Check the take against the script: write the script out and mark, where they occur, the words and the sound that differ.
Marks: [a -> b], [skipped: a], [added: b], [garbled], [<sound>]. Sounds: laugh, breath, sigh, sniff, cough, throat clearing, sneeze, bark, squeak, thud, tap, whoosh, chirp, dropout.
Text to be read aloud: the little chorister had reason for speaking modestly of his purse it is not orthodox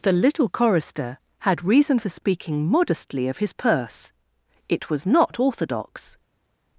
the little chorister had reason for speaking modestly of his purse it [is -> was] not orthodox